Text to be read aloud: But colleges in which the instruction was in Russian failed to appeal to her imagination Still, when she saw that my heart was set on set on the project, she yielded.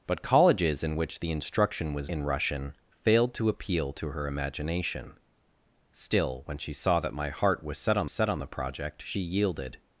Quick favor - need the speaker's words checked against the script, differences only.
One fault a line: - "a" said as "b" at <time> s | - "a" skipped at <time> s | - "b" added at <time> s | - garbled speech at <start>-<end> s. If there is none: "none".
none